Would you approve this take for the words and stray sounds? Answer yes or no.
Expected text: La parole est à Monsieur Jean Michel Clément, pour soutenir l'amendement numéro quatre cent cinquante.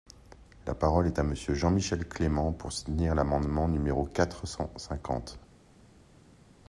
yes